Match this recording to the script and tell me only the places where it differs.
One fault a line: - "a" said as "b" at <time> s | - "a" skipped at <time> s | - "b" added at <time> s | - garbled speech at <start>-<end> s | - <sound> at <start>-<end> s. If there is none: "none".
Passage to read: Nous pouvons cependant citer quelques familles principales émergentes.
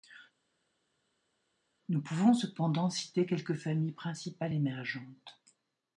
none